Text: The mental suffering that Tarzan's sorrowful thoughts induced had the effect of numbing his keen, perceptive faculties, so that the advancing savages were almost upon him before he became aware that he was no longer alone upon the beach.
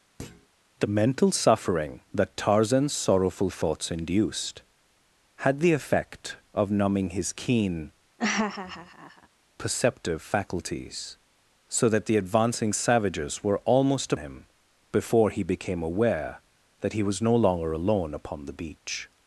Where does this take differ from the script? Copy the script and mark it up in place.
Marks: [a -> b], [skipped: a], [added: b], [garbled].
The mental suffering that Tarzan's sorrowful thoughts induced had the effect of numbing his keen, perceptive faculties, so that the advancing savages were almost [skipped: upon] him before he became aware that he was no longer alone upon the beach.